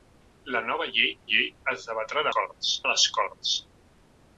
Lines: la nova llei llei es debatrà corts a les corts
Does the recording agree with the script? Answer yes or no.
yes